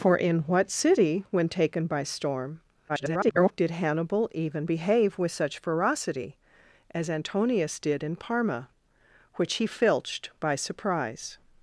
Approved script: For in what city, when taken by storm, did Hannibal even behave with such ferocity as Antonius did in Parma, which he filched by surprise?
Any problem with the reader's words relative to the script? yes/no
yes